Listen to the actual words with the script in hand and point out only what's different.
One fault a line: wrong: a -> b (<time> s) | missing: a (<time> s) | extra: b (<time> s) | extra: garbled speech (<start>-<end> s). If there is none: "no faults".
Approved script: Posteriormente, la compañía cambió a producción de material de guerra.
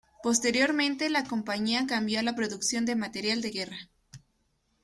extra: la (2.2 s)